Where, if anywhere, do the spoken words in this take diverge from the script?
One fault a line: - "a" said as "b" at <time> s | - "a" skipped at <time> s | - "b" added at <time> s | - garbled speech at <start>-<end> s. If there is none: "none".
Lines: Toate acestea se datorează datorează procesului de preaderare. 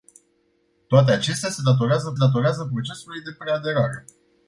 none